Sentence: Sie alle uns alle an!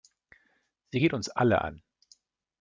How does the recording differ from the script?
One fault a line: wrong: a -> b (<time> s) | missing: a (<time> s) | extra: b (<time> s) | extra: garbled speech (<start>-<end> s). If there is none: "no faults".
wrong: alle -> geht (1.0 s)